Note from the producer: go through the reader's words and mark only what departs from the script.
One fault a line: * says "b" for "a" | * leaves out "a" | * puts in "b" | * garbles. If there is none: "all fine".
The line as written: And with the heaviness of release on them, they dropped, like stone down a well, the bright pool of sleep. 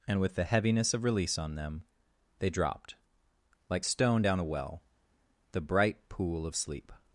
all fine